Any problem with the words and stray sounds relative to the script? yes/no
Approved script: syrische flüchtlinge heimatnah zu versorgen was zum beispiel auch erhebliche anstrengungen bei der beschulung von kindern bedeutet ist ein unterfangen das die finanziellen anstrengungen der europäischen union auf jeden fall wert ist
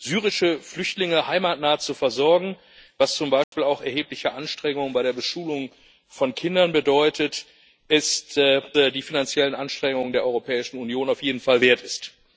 yes